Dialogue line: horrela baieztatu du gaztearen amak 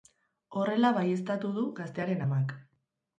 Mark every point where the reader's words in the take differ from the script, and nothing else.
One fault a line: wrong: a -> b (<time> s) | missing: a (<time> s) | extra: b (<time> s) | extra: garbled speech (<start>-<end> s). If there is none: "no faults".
no faults